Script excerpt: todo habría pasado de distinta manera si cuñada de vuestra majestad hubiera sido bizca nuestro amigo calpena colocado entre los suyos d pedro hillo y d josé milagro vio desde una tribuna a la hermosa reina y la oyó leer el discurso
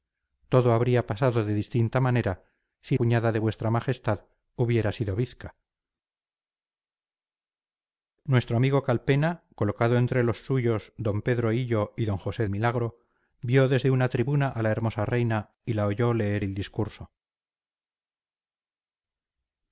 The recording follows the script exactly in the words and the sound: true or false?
true